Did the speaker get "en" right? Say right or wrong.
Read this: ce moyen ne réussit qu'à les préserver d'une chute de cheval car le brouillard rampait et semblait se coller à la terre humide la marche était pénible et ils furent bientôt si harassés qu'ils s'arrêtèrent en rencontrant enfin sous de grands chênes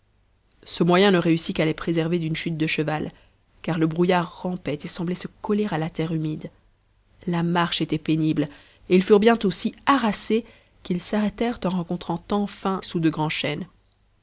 right